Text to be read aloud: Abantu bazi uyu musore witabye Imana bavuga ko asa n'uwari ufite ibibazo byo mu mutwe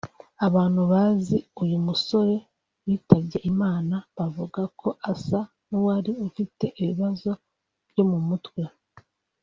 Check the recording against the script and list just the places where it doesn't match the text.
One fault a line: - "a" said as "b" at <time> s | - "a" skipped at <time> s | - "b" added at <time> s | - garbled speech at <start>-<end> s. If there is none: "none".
none